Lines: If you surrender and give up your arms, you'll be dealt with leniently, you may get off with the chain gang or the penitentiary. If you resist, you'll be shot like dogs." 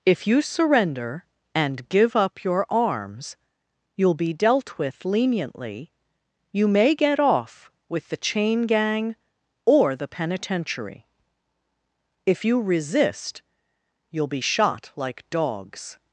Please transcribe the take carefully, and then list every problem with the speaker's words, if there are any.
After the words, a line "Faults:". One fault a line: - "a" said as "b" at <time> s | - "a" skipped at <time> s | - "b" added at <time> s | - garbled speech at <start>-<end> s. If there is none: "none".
If you surrender and give up your arms, you'll be dealt with leniently, you may get off with the chain gang or the penitentiary. If you resist, you'll be shot like dogs."
Faults:
none